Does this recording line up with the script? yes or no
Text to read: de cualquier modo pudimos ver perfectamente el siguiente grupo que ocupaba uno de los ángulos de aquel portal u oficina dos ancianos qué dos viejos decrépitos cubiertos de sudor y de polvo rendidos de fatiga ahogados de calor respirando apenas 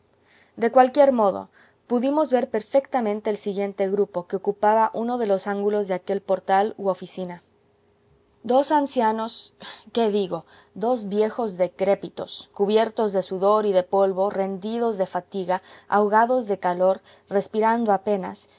no